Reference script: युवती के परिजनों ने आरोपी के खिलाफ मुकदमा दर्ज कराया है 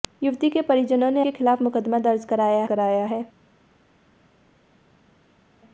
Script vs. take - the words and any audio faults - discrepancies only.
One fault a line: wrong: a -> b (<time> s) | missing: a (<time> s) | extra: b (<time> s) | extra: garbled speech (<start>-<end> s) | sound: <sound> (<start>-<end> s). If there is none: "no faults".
missing: आरोपी (1.2 s)
extra: कराया (2.6 s)